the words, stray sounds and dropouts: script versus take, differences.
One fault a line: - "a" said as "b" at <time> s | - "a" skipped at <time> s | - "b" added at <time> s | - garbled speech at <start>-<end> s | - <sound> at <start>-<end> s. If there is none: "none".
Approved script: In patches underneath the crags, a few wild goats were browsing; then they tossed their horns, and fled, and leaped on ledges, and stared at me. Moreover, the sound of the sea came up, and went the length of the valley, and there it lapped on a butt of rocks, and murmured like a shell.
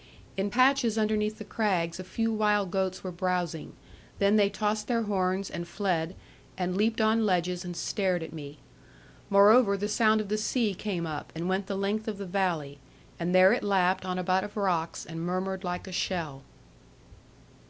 none